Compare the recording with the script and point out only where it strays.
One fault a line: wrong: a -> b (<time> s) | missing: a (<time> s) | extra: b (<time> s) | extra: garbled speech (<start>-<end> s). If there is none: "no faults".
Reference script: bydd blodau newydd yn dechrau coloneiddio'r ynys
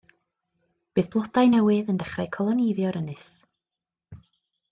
no faults